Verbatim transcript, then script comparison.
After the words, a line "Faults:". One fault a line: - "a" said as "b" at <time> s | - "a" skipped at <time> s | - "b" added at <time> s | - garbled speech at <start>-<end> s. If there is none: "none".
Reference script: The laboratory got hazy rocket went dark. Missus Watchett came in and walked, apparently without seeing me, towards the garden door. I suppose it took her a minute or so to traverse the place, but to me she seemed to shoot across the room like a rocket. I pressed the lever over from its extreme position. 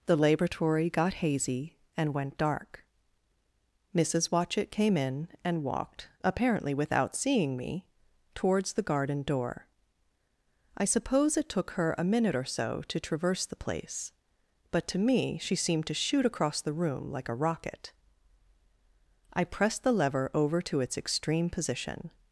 The laboratory got hazy and went dark. Missus Watchett came in and walked, apparently without seeing me, towards the garden door. I suppose it took her a minute or so to traverse the place, but to me she seemed to shoot across the room like a rocket. I pressed the lever over to its extreme position.
Faults:
- "rocket" said as "and" at 1.9 s
- "from" said as "to" at 20.6 s